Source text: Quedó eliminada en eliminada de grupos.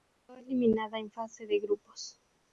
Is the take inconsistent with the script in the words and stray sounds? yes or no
yes